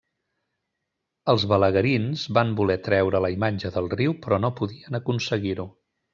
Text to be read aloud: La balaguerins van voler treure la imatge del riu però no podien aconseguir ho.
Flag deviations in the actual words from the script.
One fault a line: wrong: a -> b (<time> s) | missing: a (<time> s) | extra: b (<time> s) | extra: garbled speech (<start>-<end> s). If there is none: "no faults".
wrong: La -> Els (1.3 s)